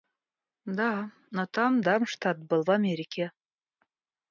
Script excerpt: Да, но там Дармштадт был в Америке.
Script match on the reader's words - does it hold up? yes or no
yes